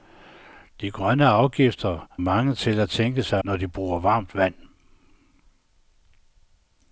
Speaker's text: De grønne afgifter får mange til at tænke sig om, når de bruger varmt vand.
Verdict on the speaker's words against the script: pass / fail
fail